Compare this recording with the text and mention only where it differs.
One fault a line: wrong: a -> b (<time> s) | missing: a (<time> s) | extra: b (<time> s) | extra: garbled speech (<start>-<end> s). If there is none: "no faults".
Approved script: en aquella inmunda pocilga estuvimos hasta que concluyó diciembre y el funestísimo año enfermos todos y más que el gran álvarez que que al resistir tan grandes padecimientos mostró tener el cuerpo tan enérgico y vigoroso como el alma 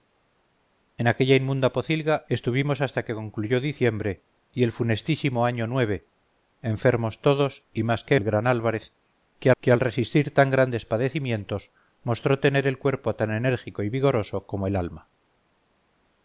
no faults